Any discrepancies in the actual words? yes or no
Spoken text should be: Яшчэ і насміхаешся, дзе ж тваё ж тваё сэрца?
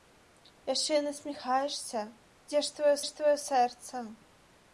no